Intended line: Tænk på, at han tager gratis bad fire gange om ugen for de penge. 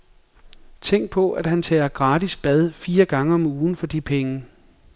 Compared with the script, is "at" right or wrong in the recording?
right